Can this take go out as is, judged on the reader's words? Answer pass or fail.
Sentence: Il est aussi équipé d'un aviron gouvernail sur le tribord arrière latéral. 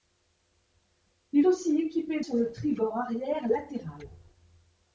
fail